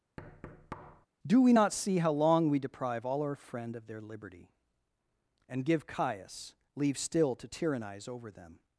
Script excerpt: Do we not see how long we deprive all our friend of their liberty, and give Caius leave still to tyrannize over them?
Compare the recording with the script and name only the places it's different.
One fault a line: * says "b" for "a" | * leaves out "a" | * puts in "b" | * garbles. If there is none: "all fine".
all fine